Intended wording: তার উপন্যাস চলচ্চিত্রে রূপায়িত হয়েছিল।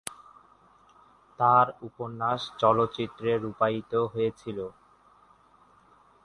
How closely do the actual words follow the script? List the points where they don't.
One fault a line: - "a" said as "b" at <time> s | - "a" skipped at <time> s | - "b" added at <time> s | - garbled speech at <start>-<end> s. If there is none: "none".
none